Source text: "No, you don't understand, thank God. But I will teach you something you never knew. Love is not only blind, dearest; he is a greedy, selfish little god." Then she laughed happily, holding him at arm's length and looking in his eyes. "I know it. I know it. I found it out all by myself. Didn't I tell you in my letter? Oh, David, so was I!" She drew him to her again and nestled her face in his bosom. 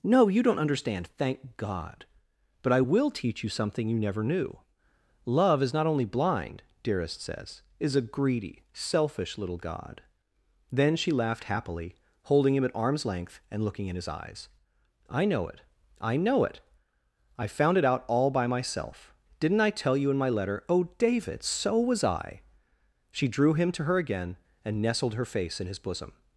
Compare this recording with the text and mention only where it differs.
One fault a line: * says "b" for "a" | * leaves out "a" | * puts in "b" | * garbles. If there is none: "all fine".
* says "says" for "he"